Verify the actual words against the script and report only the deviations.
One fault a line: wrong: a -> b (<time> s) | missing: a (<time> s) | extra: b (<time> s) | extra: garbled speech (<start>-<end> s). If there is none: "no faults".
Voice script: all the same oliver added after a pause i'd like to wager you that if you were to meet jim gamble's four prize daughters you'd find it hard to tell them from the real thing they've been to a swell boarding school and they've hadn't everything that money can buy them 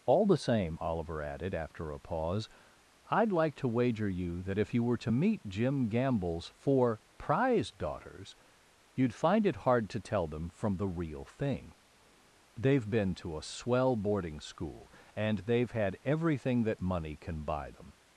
wrong: hadn't -> had (15.7 s)